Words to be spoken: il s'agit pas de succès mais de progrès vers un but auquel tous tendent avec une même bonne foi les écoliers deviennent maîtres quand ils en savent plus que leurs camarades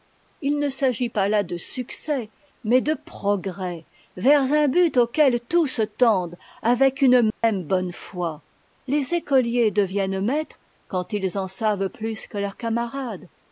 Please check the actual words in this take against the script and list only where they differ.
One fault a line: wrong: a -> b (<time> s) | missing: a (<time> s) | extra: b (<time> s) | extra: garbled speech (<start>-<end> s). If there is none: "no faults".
extra: ne (0.6 s)
extra: là (1.3 s)